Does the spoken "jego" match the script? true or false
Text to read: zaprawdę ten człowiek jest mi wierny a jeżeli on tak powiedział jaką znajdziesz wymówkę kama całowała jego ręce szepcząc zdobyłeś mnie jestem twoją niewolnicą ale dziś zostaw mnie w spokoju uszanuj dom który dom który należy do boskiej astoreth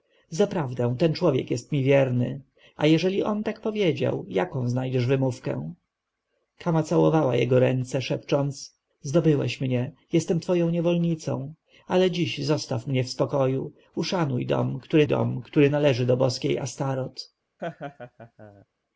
true